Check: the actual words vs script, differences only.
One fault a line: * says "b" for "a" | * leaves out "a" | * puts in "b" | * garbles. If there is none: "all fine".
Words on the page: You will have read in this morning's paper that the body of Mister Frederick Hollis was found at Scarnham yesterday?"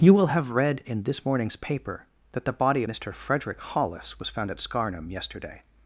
* leaves out "of"